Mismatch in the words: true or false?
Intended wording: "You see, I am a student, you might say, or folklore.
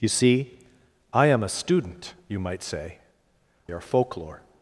false